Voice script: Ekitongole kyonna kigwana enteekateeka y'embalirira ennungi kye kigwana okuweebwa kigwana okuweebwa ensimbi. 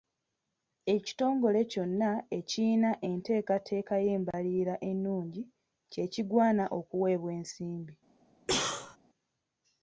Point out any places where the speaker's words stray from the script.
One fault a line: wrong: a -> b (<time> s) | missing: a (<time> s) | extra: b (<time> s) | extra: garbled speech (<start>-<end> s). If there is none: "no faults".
wrong: kigwana -> ekiyina (2.4 s)
missing: kigwana okuweebwa (7.3 s)